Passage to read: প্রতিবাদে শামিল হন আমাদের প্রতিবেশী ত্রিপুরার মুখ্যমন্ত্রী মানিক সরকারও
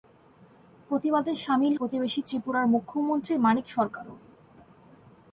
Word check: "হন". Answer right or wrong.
wrong